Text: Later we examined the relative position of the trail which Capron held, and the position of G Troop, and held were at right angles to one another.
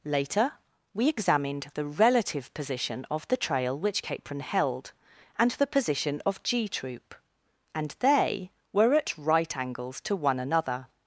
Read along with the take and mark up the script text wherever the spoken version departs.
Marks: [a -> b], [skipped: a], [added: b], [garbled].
Later we examined the relative position of the trail which Capron held, and the position of G Troop, and [held -> they] were at right angles to one another.